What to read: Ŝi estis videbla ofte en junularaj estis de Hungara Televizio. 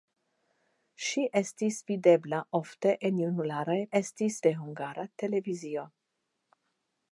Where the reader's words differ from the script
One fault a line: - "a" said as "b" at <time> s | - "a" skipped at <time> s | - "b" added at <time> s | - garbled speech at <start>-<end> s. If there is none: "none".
none